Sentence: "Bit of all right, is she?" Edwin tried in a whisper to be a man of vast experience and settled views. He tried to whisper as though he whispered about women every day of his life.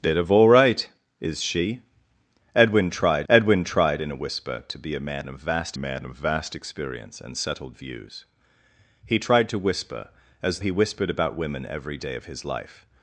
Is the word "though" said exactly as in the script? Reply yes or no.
no